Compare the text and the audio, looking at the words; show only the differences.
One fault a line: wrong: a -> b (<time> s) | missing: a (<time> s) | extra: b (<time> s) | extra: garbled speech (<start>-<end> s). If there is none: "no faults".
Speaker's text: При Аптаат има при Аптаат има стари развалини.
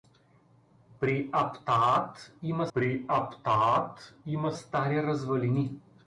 no faults